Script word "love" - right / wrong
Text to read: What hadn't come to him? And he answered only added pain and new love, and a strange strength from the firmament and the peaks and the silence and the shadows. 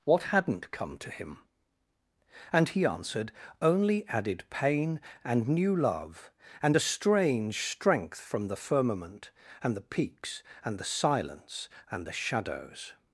right